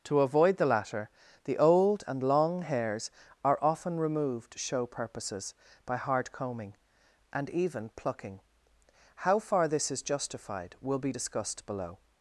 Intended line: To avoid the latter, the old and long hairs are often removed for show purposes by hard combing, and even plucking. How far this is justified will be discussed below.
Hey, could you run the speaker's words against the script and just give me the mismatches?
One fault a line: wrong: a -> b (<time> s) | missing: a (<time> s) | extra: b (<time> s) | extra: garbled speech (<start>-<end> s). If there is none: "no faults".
missing: for (4.6 s)